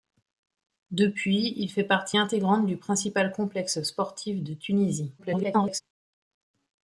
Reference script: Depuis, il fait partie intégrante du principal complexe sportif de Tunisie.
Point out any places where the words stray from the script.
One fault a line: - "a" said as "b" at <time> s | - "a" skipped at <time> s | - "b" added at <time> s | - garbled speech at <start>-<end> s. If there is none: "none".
- garbled speech at 5.2-5.8 s